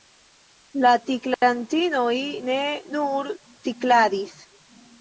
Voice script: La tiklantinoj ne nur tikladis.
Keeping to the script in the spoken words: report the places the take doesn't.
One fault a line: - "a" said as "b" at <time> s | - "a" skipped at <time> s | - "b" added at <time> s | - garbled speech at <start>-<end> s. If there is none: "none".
none